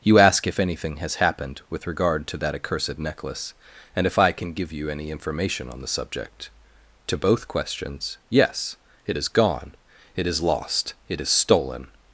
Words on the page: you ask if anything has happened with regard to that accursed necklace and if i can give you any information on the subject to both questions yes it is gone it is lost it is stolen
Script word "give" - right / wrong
right